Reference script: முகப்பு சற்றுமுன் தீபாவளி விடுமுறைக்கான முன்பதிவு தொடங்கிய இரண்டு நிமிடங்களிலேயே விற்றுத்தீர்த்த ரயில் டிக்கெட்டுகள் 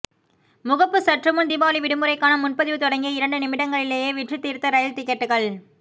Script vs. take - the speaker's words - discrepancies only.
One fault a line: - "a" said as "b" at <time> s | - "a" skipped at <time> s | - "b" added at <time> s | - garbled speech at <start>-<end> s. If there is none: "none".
none